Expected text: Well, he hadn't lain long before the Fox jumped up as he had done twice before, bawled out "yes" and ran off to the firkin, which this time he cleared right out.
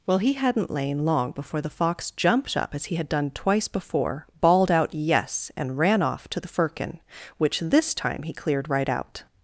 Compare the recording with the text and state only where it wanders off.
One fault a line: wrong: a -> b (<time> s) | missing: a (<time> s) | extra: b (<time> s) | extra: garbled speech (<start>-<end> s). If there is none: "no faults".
no faults